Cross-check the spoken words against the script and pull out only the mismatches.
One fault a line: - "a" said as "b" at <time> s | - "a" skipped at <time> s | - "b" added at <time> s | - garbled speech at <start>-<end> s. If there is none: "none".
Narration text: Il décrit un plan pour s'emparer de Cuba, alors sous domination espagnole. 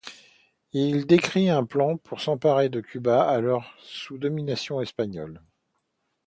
none